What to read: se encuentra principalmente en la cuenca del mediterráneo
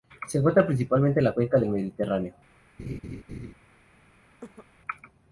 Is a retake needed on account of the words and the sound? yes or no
yes